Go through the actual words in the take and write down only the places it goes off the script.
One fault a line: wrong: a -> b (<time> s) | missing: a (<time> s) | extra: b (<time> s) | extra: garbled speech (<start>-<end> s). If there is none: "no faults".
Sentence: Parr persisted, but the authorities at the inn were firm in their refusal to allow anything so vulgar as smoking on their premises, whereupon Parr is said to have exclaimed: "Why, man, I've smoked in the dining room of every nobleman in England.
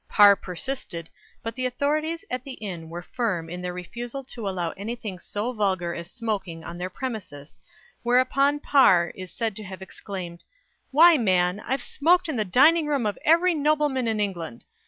no faults